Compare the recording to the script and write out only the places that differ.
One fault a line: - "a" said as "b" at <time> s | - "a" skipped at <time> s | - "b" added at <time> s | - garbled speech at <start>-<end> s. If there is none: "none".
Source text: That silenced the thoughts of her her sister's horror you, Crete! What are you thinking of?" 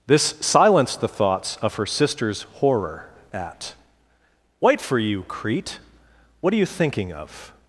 - "That" said as "This" at 0.1 s
- "her" skipped at 1.9 s
- "at White for" added at 3.3 s